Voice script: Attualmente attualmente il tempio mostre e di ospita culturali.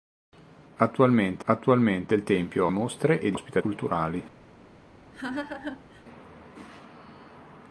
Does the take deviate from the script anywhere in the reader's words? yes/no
no